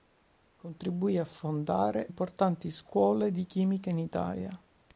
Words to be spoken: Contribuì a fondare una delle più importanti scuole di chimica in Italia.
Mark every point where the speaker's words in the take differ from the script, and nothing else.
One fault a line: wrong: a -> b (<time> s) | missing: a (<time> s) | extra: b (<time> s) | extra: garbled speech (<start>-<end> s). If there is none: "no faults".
missing: una delle più (2.1 s)